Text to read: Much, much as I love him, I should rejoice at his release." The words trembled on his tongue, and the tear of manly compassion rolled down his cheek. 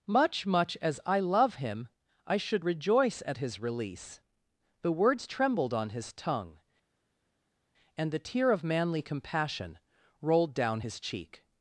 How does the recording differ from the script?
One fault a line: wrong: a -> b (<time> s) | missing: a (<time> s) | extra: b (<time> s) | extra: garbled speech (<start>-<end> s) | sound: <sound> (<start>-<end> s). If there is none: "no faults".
no faults